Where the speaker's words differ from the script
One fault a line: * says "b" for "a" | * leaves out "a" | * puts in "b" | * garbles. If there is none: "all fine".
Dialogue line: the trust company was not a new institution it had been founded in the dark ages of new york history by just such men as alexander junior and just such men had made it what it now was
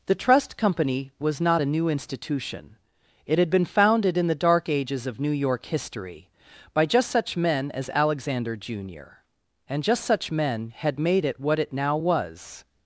all fine